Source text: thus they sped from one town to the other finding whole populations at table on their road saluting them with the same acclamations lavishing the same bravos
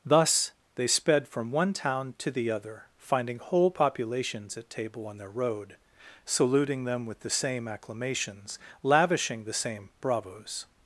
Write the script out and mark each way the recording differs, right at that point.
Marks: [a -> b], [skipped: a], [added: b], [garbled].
thus they sped from one town to the other finding whole populations at table on their road saluting them with the same acclamations lavishing the same bravos